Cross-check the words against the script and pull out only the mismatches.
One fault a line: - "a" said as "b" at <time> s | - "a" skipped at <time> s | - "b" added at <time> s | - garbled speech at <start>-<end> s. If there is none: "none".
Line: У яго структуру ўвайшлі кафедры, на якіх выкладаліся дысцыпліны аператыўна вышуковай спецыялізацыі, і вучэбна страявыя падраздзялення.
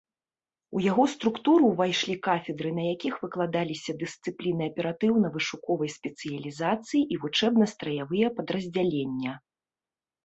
none